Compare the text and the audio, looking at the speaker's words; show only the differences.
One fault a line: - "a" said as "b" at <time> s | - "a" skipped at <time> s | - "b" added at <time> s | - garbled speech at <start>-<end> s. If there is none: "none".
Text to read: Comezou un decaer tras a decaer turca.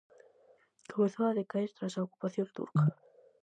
- "un" said as "a" at 1.3 s
- "decaer" said as "ocupación" at 2.1 s